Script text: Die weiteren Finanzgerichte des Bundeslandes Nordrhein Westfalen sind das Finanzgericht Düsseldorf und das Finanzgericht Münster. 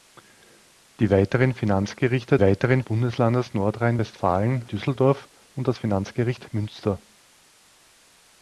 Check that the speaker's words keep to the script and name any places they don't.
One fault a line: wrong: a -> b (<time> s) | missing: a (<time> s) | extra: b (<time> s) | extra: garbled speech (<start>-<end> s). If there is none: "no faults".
wrong: des -> weiteren (2.4 s)
missing: sind das Finanzgericht (4.7 s)